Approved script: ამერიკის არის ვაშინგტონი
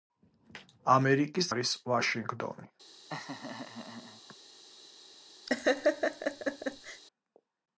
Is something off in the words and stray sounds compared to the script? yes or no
yes